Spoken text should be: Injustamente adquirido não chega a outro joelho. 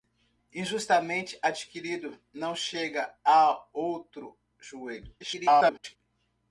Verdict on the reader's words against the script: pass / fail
fail